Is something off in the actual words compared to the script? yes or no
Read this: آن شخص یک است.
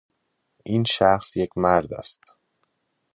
yes